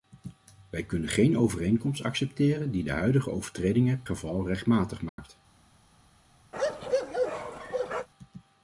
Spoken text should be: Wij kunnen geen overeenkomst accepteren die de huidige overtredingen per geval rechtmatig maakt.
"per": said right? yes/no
no